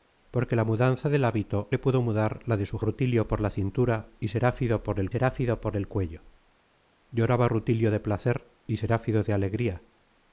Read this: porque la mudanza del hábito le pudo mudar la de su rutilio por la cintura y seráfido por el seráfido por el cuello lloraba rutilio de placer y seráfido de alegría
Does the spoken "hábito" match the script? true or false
true